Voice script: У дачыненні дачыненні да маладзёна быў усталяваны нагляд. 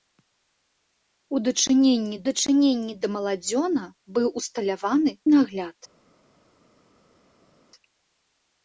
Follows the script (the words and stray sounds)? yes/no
yes